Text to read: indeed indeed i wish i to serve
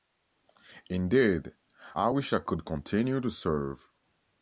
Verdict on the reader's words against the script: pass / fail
fail